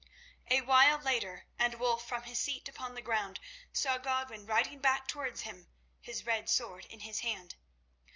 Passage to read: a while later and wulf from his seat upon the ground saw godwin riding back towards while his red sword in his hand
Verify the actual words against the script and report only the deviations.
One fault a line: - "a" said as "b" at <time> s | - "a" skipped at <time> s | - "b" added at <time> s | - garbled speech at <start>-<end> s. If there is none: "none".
- "while" said as "him" at 5.4 s